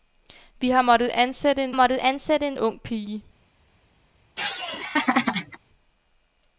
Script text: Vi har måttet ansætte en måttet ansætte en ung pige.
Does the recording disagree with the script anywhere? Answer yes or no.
no